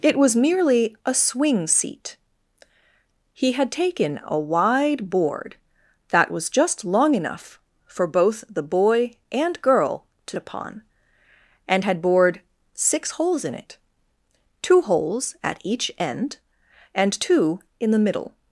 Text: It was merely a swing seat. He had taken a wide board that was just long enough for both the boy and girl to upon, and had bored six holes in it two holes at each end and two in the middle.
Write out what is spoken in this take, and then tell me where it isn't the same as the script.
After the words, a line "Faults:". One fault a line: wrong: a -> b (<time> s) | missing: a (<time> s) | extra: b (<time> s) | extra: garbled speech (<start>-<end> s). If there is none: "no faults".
It was merely a swing seat. He had taken a wide board that was just long enough for both the boy and girl to upon, and had bored six holes in it two holes at each end and two in the middle.
Faults:
no faults